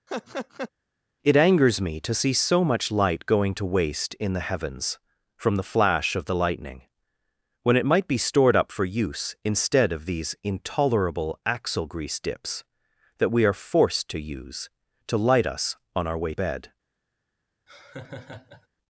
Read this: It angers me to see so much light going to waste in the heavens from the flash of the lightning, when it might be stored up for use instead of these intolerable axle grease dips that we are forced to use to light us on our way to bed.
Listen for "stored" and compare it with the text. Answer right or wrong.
right